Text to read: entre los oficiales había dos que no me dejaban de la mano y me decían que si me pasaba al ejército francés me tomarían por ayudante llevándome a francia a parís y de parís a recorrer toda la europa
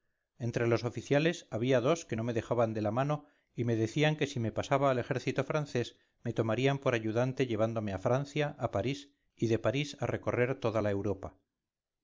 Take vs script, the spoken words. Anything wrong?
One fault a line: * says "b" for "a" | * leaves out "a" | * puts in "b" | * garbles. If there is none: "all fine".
all fine